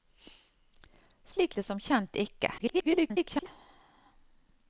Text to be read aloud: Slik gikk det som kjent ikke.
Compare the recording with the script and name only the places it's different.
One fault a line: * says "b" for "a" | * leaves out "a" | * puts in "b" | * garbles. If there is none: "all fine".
* leaves out "gikk"
* garbles